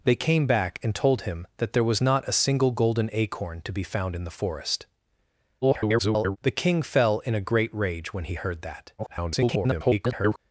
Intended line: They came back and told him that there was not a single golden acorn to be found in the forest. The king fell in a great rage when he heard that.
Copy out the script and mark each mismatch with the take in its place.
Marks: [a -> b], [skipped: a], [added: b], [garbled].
They came back and told him that there was not a single golden acorn to be found in the forest. [garbled] The king fell in a great rage when he heard that. [garbled]